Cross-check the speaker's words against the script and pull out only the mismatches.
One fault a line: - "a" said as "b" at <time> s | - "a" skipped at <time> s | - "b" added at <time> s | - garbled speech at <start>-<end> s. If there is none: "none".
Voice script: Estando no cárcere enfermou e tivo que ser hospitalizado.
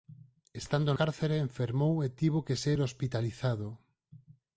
- "no" skipped at 0.9 s